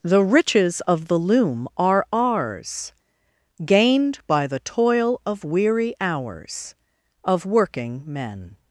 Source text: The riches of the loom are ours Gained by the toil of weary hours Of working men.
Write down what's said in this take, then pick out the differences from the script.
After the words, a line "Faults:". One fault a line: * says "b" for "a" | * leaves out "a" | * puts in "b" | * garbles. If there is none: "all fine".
The riches of the loom are ours Gained by the toil of weary hours Of working men.
Faults:
all fine